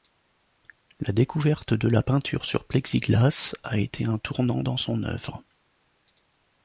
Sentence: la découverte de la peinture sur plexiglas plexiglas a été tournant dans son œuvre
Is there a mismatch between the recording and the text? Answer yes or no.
yes